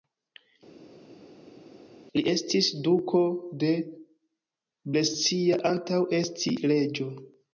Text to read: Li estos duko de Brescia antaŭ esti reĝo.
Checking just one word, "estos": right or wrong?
wrong